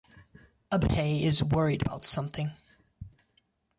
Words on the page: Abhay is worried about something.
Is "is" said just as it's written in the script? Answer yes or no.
yes